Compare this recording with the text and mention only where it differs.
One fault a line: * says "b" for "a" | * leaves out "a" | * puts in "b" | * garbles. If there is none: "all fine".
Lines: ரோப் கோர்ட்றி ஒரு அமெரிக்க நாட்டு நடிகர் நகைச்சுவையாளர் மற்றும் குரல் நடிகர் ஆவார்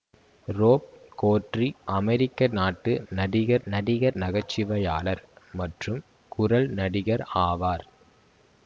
* leaves out "ஒரு"
* puts in "நடிகர்"